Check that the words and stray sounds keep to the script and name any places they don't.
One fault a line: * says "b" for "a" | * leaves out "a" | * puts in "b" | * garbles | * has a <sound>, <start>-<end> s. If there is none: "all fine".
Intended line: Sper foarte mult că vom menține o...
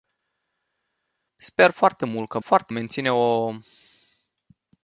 * says "foarte" for "vom"